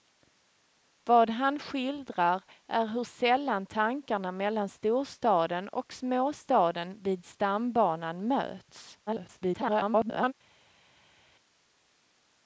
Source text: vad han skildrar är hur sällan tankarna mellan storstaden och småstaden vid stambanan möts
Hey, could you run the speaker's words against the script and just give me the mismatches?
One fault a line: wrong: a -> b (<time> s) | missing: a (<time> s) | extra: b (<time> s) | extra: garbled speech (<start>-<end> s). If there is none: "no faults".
extra: garbled speech (9.1-10.3 s)